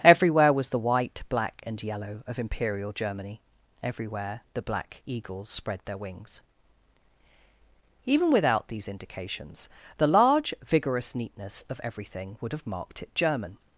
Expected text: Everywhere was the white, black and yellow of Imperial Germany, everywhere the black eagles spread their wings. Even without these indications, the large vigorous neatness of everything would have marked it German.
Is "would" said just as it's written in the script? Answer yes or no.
yes